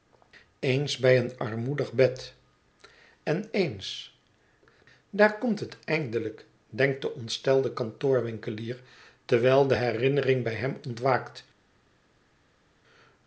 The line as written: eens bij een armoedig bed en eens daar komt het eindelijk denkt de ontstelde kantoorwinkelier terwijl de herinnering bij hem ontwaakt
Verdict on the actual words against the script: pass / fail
pass